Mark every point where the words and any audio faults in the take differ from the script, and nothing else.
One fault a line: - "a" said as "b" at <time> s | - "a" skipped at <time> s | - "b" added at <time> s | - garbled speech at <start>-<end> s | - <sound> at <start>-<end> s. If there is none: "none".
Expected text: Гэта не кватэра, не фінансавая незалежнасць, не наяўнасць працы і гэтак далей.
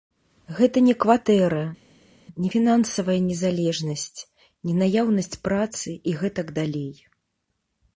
none